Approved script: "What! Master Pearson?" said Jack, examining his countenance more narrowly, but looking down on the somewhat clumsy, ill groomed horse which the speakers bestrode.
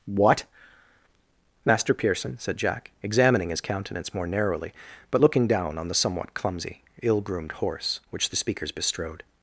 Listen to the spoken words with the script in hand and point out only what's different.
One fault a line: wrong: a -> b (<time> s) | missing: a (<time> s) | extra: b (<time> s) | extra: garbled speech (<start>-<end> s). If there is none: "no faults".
no faults